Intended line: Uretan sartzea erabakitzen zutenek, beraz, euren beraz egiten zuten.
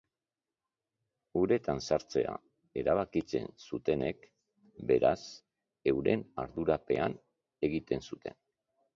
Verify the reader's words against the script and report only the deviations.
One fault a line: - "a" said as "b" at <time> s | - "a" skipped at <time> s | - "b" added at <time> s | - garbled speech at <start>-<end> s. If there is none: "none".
- "beraz" said as "ardurapean" at 6.4 s